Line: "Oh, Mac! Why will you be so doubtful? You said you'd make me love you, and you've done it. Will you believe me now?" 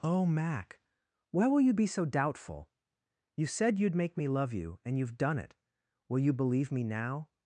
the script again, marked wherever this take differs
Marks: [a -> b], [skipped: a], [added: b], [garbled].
"Oh, Mac! Why will you be so doubtful? You said you'd make me love you, and you've done it. Will you believe me now?"